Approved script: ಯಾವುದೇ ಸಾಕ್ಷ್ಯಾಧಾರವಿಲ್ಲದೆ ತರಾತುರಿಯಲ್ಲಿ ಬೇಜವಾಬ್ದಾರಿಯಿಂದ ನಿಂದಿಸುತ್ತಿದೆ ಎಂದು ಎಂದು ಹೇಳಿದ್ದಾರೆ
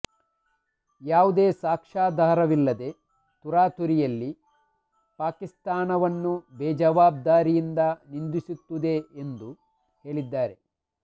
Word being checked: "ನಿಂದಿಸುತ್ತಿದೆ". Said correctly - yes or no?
yes